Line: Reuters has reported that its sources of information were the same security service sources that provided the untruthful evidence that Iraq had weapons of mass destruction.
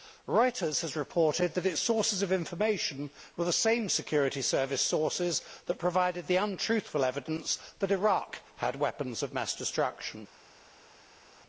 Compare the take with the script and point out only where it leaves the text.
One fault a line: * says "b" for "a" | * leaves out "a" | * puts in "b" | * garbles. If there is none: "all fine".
all fine